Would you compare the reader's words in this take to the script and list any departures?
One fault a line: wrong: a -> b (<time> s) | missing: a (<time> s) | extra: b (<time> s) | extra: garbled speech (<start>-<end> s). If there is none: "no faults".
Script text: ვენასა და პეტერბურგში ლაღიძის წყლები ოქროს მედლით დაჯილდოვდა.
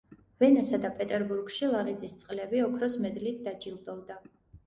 no faults